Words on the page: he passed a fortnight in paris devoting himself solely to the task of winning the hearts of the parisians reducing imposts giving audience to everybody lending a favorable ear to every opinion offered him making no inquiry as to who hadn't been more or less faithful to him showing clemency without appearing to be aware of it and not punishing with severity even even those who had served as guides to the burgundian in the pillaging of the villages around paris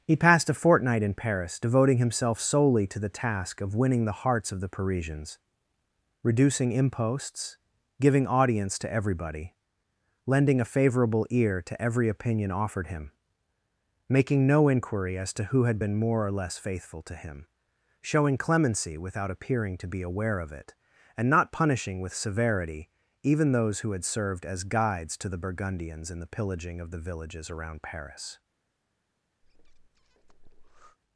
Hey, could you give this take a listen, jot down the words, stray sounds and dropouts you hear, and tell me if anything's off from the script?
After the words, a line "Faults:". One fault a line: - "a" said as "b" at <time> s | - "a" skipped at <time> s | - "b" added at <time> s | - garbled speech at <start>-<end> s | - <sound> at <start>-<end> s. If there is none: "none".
he passed a fortnight in paris devoting himself solely to the task of winning the hearts of the parisians reducing imposts giving audience to everybody lending a favorable ear to every opinion offered him making no inquiry as to who had been more or less faithful to him showing clemency without appearing to be aware of it and not punishing with severity even those who had served as guides to the burgundians in the pillaging of the villages around paris
Faults:
- "hadn't" said as "had" at 15.7 s
- "even" skipped at 23.5 s
- "burgundian" said as "burgundians" at 25.4 s
- breath at 29.4-31.0 s